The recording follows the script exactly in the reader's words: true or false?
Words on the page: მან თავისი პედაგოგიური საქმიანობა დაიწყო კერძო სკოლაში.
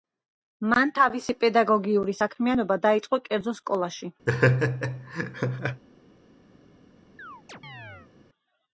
true